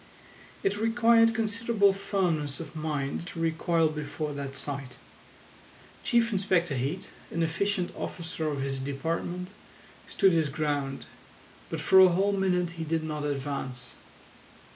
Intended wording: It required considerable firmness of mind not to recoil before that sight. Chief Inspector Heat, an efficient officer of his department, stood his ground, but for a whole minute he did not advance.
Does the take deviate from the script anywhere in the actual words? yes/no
yes